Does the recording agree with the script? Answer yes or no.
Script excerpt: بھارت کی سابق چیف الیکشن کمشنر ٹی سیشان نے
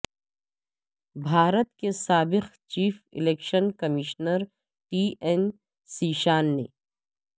no